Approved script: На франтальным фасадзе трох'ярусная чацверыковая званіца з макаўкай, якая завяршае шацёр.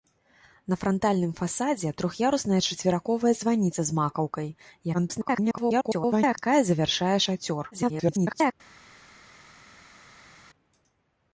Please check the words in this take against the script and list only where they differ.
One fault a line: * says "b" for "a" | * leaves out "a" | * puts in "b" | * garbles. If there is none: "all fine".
* garbles
* garbles